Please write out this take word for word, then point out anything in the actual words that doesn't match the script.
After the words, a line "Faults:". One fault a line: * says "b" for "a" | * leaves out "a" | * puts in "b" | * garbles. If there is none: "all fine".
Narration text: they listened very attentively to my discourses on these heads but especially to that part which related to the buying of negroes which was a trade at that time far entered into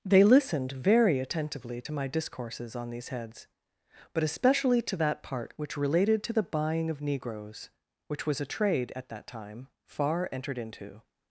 they listened very attentively to my discourses on these heads but especially to that part which related to the buying of negroes which was a trade at that time far entered into
Faults:
all fine